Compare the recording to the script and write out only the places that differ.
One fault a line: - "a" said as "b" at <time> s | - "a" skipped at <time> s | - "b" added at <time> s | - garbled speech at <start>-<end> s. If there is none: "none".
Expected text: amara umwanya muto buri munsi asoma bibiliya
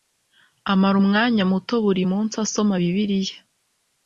none